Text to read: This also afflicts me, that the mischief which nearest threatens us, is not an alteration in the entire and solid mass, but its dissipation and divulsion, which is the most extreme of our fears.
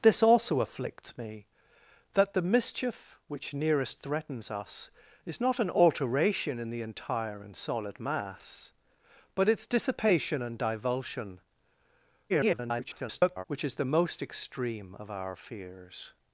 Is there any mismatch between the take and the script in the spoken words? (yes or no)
yes